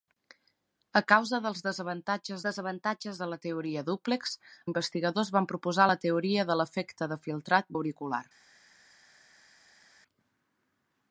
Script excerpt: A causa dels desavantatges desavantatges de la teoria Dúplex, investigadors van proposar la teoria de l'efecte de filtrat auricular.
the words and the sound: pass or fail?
pass